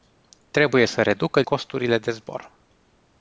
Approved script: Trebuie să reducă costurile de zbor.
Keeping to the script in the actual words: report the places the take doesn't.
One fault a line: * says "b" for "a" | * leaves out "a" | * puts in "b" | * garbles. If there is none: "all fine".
all fine